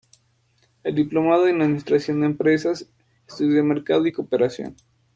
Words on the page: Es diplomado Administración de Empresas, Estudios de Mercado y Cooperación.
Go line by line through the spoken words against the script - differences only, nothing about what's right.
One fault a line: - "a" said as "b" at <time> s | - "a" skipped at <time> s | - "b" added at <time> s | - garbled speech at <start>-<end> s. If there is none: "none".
- "en" added at 1.5 s